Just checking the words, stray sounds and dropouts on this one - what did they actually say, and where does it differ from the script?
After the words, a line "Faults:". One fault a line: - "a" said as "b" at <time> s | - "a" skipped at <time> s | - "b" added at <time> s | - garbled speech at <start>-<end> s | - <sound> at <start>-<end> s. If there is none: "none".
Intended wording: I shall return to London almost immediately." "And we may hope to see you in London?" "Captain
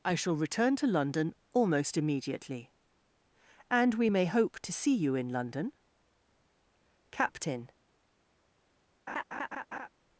I shall return to London almost immediately." "And we may hope to see you in London?" "Captain
Faults:
- laugh at 9.1-9.9 s